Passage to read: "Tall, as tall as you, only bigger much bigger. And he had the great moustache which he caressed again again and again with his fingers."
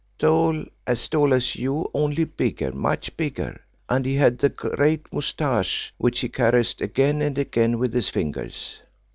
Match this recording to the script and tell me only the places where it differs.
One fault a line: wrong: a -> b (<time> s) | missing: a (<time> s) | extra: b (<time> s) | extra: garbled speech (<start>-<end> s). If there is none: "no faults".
missing: again (7.2 s)